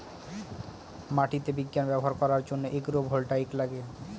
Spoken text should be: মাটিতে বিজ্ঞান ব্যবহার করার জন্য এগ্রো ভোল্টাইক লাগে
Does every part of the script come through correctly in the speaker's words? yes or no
yes